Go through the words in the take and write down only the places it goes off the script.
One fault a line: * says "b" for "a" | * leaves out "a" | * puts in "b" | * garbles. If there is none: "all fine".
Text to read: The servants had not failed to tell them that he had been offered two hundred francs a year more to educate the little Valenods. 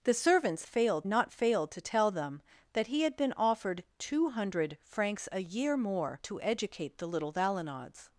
* says "failed" for "had"